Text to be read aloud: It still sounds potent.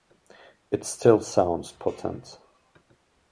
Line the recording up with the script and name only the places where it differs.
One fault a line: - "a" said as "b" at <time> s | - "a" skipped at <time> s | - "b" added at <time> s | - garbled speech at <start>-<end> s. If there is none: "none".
none